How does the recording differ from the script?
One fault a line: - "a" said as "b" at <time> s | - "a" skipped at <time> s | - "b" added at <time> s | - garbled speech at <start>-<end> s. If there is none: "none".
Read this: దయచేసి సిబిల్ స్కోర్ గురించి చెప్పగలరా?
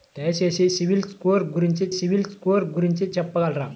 - "సిబిల్ స్కోర్ గురించి" added at 1.9 s